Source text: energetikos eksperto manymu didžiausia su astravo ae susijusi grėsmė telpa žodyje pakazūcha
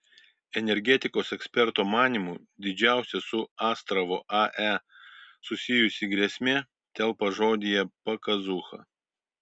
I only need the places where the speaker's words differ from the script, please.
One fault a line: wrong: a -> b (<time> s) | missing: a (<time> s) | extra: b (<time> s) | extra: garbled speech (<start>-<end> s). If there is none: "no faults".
no faults